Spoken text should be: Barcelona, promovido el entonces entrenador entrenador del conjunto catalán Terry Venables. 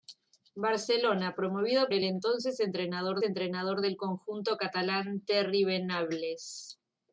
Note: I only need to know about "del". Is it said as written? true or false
true